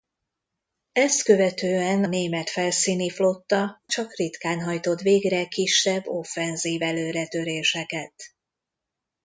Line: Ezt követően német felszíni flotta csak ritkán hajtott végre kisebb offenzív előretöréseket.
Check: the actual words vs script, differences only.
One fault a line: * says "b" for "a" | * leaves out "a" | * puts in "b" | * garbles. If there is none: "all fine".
all fine